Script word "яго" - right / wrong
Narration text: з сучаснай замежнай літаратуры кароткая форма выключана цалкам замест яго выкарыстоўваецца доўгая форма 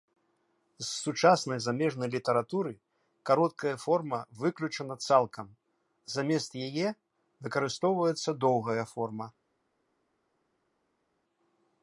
wrong